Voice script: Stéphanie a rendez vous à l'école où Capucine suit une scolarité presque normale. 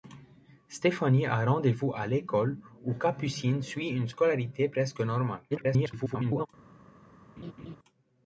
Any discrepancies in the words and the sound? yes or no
yes